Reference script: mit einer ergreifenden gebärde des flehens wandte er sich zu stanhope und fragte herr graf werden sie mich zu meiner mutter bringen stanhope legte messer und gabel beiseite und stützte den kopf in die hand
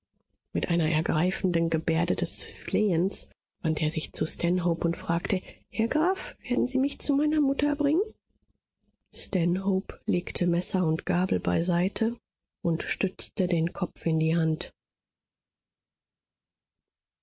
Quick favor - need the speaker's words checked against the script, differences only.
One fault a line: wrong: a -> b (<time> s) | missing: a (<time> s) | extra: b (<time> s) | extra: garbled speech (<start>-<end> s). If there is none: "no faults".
no faults